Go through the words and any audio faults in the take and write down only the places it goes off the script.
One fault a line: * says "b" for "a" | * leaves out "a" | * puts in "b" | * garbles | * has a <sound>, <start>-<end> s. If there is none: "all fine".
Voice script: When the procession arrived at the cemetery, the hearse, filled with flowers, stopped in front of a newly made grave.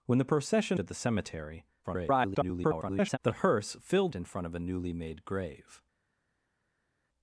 * leaves out "arrived"
* garbles
* leaves out "with flowers stopped"